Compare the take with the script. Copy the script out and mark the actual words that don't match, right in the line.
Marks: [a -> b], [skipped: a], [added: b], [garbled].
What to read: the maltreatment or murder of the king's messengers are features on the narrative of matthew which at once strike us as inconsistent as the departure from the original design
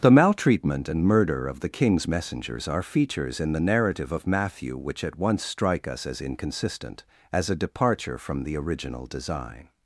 the maltreatment [or -> and] murder of the king's messengers are features [on -> in] the narrative of matthew which at once strike us as inconsistent as [the -> a] departure from the original design